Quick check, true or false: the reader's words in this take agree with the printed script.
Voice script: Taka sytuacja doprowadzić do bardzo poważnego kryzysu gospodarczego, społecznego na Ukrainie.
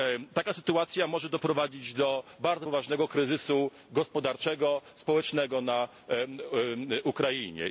false